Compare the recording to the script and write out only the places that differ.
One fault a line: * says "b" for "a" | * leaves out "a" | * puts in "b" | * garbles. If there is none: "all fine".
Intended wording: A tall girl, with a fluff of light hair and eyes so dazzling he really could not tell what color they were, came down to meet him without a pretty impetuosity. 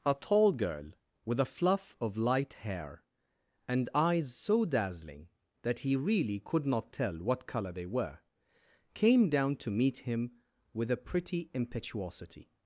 * puts in "that"
* says "with" for "without"